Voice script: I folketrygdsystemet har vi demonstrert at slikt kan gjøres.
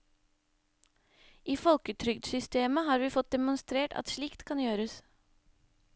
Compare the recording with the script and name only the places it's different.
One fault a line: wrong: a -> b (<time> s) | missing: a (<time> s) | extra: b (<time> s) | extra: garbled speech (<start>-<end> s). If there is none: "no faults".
extra: fått (3.2 s)